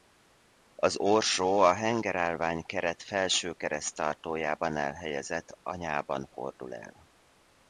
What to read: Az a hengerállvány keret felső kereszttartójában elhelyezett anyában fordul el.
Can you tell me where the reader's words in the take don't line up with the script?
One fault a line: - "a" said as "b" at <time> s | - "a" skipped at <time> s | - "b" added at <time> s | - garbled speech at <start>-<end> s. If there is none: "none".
- "orsó" added at 0.9 s